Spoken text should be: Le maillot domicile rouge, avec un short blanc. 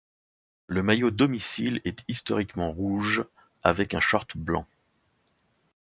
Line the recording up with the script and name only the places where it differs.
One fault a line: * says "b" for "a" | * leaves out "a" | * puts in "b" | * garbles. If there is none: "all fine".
* puts in "est historiquement"